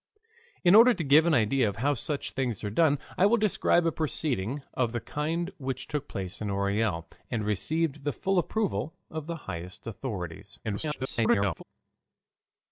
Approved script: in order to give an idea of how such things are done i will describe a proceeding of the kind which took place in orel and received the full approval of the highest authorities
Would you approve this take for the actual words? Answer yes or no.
no